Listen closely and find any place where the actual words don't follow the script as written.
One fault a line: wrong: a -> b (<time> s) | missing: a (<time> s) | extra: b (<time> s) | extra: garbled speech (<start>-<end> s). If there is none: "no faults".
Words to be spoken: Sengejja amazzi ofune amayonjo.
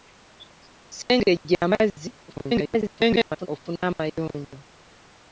extra: garbled speech (2.3-3.5 s)